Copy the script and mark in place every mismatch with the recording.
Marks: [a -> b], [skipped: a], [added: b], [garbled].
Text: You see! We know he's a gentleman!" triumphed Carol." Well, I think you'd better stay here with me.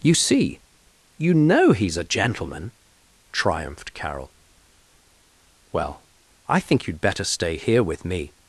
You see! [We -> You] know he's a gentleman!" triumphed Carol." Well, I think you'd better stay here with me.